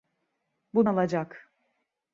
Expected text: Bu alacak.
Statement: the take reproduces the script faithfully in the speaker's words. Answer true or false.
true